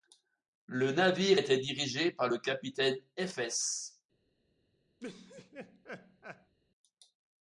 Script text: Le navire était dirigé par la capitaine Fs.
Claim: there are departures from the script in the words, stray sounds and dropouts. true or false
true